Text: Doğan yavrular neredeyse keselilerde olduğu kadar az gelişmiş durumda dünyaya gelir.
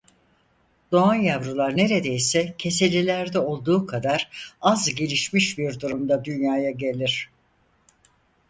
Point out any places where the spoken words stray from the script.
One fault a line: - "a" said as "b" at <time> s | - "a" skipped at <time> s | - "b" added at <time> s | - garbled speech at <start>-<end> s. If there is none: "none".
- "bir" added at 5.6 s